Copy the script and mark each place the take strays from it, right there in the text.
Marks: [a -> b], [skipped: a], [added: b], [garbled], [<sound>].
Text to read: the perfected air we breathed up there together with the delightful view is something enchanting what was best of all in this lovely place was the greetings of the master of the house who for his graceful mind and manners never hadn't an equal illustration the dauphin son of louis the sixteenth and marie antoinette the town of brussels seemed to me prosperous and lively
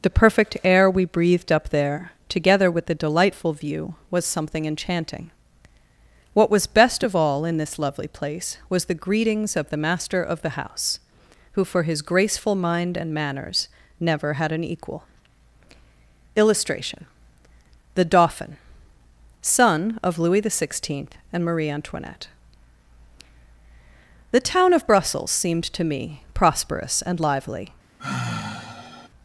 the [perfected -> perfect] air we breathed up there together with the delightful view [is -> was] something enchanting what was best of all in this lovely place was the greetings of the master of the house who for his graceful mind and manners never [hadn't -> had] an equal illustration the dauphin son of louis the sixteenth and marie antoinette the town of brussels seemed to me prosperous and lively [sigh]